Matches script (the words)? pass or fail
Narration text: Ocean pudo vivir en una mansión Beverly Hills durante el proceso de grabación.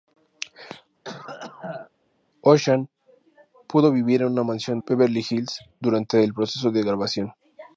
pass